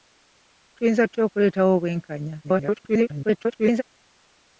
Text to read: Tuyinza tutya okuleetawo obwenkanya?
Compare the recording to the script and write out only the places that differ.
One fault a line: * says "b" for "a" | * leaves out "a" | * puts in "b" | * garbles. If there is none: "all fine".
* garbles